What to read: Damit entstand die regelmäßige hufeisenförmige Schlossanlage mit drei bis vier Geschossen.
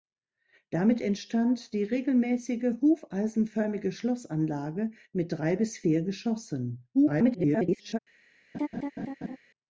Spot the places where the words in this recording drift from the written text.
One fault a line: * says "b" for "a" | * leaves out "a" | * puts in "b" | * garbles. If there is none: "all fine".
* garbles